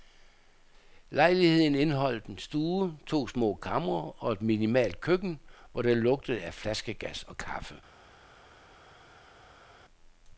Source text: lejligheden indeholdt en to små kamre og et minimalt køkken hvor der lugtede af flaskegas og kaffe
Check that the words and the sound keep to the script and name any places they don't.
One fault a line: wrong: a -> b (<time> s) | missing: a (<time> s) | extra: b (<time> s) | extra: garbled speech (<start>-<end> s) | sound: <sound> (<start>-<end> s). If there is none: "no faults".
extra: stue (2.4 s)